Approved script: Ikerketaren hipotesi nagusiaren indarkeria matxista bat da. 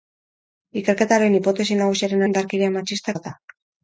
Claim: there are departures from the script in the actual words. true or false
false